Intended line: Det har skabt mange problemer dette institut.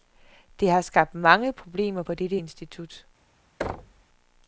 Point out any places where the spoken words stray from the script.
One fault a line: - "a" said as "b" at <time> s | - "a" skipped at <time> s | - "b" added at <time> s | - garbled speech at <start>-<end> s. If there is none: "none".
- "på" added at 2.0 s